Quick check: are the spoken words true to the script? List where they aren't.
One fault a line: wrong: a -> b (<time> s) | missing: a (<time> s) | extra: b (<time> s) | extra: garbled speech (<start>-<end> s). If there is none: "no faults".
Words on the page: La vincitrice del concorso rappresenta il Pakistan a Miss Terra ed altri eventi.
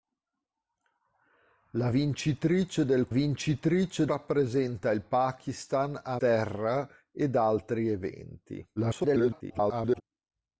wrong: concorso -> vincitrice (3.1 s)
missing: Miss (6.2 s)
extra: garbled speech (8.8-10.0 s)